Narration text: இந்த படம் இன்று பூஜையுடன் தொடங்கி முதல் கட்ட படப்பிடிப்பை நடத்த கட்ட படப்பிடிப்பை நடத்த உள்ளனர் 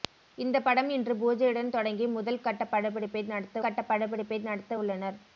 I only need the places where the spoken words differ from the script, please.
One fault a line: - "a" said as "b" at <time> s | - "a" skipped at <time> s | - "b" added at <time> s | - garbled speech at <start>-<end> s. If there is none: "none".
none